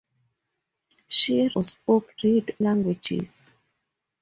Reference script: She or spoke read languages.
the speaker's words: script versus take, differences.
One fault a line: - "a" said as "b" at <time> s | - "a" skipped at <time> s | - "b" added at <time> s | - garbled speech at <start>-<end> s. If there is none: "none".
none